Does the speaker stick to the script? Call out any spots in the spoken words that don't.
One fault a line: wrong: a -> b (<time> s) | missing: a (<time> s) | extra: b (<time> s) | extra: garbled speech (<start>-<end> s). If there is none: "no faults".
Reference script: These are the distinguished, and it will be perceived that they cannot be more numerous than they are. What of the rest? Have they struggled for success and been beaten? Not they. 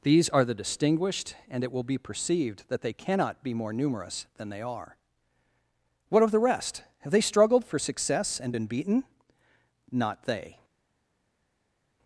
no faults